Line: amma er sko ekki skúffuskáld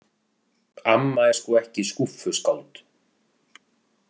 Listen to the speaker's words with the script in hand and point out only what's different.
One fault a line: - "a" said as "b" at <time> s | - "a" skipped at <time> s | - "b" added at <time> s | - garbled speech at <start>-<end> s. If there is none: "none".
none